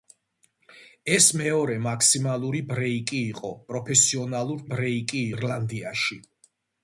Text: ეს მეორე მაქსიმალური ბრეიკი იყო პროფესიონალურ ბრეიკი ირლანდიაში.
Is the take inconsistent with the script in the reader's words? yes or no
no